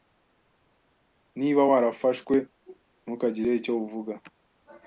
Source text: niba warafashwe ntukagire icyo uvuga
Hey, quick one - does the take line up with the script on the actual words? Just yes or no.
yes